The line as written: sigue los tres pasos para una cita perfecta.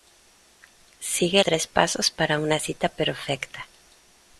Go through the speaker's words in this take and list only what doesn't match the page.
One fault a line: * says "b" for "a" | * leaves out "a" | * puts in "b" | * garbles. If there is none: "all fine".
* leaves out "los"